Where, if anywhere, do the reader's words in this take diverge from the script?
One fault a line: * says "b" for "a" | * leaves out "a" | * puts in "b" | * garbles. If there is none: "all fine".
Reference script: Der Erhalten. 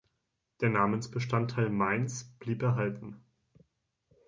* puts in "Namensbestandteil Mainz blieb"